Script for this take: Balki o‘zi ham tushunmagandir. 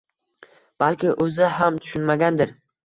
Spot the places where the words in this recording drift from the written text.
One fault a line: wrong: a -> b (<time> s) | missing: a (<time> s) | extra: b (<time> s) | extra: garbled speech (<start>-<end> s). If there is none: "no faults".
no faults